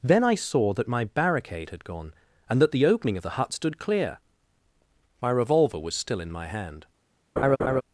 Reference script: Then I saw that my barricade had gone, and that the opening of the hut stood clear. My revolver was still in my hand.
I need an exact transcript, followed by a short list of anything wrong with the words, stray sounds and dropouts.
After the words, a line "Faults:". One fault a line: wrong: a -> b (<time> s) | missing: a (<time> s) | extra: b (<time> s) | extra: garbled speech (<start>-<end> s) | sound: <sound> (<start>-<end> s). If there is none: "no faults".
Then I saw that my barricade had gone, and that the opening of the hut stood clear. My revolver was still in my hand.
Faults:
sound: laugh (7.4-7.8 s)